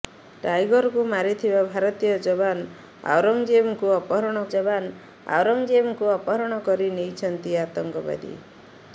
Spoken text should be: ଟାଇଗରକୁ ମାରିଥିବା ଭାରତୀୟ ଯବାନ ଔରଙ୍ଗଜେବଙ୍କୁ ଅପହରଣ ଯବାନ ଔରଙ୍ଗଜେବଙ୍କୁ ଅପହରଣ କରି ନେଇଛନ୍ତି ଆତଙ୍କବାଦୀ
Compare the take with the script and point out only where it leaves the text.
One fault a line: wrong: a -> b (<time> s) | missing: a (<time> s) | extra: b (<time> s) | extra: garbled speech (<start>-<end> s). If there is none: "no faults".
no faults